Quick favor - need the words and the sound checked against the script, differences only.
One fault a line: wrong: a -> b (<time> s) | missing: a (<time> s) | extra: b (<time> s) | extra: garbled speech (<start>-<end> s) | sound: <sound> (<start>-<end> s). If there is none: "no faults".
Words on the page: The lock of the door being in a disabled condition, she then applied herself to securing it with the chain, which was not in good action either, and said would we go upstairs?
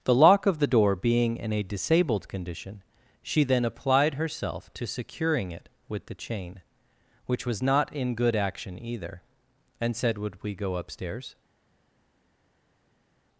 no faults